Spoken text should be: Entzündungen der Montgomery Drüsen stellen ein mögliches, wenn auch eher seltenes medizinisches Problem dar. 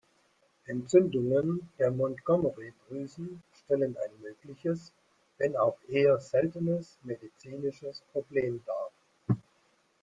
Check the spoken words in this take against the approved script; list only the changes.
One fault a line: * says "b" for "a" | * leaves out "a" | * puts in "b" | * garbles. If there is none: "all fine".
all fine